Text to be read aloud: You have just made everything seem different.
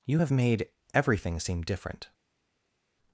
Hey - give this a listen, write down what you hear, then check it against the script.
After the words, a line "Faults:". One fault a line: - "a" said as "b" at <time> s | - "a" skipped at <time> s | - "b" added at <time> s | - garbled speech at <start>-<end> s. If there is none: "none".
You have made everything seem different.
Faults:
- "just" skipped at 0.3 s